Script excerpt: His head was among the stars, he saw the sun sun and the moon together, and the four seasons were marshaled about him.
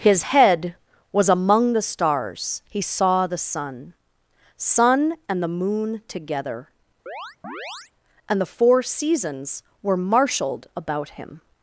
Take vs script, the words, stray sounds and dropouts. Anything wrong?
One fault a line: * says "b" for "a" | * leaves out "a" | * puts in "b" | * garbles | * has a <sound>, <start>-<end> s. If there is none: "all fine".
* has a chirp, 7.1-7.9 s